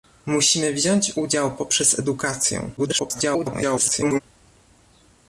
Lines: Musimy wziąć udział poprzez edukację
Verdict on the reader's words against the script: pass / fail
fail